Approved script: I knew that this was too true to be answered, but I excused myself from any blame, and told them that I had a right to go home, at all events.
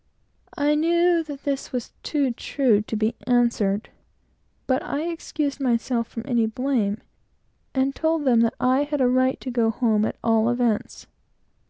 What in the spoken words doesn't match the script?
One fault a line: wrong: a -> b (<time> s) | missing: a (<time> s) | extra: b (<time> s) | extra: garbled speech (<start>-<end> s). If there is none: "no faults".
no faults